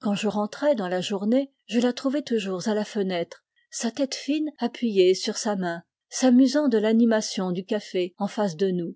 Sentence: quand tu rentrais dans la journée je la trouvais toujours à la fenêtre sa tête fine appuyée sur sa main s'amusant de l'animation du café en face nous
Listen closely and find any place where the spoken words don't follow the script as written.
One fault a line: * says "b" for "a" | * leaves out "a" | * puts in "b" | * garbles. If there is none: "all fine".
* says "je" for "tu"
* puts in "de"